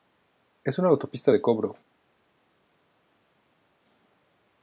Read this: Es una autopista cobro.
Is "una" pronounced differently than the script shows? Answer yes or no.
no